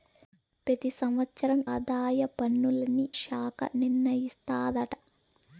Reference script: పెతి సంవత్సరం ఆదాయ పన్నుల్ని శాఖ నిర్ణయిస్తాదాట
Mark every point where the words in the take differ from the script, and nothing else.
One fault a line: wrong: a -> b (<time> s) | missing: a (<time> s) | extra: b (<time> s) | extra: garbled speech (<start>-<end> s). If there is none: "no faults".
no faults